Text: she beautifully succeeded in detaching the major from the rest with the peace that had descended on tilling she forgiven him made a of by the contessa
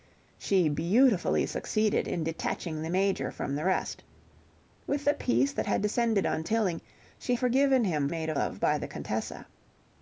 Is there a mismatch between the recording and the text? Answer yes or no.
no